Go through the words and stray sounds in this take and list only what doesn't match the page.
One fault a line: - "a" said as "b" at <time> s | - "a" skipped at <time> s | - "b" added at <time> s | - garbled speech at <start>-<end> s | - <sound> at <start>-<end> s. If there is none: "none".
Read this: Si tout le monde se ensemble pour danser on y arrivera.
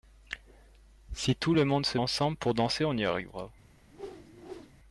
- whoosh at 3.9-4.7 s